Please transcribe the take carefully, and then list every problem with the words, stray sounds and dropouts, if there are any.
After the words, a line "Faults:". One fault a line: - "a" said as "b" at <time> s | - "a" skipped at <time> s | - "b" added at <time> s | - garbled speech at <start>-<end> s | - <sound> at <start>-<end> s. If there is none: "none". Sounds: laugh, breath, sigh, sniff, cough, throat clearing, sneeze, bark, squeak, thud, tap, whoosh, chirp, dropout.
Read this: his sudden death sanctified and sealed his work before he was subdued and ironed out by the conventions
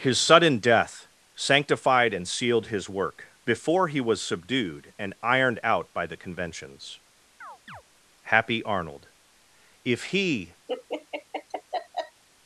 his sudden death sanctified and sealed his work before he was subdued and ironed out by the conventions happy arnold if he
Faults:
- chirp at 7.4-7.8 s
- "happy arnold if he" added at 8.2 s
- laugh at 10.7-12.2 s